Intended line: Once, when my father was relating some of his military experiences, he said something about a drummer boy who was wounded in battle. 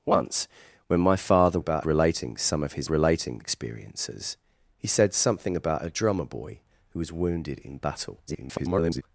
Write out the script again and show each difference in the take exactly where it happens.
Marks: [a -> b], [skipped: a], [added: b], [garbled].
Once, when my father [was -> about] relating some of his [military -> relating] experiences, he said something about a drummer boy who was wounded in battle. [garbled]